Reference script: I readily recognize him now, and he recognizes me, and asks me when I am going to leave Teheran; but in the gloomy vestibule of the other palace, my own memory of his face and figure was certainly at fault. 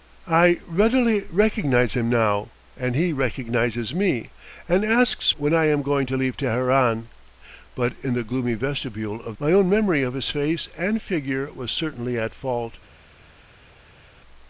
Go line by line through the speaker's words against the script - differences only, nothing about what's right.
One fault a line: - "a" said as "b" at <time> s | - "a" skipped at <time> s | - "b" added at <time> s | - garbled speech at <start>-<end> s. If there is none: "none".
- "me" skipped at 5.3 s
- "the other palace" skipped at 9.4 s